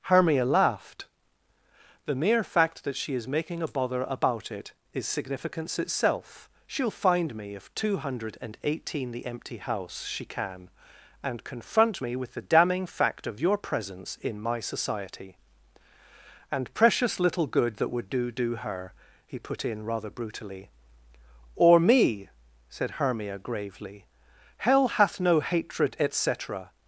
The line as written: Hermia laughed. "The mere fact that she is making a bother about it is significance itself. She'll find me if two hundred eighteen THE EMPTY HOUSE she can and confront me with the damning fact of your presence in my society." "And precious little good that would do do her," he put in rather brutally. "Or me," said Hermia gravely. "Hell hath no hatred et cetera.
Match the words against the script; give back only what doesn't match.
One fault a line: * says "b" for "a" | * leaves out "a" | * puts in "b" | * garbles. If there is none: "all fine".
all fine